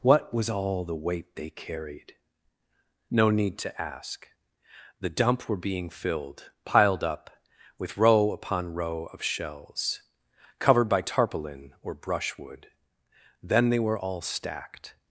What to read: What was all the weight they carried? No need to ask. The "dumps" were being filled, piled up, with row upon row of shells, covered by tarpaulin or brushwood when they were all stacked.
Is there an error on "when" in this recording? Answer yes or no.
yes